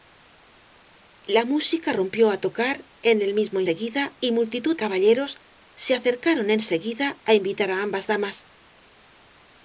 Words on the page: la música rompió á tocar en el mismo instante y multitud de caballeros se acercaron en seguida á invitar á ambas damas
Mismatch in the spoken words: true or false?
true